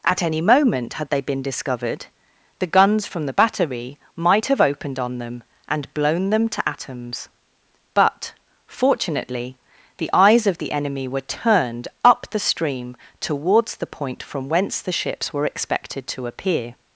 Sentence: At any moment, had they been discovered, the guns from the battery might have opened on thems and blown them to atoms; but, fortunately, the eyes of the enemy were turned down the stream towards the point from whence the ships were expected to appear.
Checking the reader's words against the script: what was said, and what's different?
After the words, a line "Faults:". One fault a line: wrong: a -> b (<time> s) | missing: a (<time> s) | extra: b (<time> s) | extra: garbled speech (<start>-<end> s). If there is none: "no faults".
At any moment, had they been discovered, the guns from the battery might have opened on them and blown them to atoms; but, fortunately, the eyes of the enemy were turned up the stream towards the point from whence the ships were expected to appear.
Faults:
wrong: thems -> them (5.2 s)
wrong: down -> up (12.0 s)